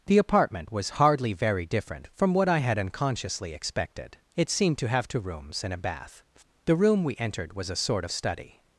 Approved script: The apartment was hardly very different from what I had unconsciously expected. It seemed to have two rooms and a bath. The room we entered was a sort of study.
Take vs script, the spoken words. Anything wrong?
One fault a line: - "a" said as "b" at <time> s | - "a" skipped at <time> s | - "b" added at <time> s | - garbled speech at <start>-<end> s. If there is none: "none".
none